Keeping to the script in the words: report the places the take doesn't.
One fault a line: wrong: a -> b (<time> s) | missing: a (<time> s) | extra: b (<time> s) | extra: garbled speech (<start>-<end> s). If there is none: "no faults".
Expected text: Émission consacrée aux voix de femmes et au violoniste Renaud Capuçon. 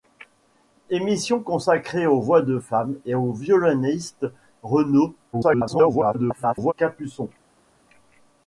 extra: garbled speech (5.3-6.7 s)